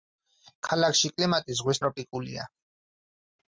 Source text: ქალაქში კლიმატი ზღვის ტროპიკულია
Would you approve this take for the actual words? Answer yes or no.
yes